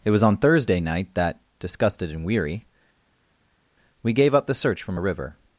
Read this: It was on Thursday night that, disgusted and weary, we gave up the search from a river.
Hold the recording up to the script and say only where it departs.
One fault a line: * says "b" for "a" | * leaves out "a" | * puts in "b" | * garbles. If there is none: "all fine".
all fine